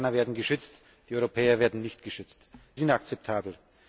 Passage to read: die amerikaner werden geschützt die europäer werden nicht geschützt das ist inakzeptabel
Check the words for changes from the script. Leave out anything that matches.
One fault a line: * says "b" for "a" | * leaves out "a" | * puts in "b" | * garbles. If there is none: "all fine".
* leaves out "das ist"